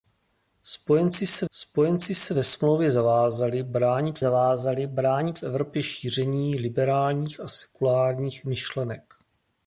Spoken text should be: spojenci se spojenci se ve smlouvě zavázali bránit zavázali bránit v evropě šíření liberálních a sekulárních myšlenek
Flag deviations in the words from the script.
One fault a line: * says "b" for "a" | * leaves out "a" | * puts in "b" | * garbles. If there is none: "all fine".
all fine